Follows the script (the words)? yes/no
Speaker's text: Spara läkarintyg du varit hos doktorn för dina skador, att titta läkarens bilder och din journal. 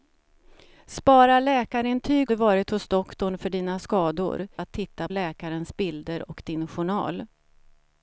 yes